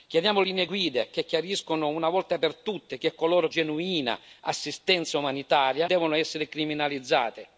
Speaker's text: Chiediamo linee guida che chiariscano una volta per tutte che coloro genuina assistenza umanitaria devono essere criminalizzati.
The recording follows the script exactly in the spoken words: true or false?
true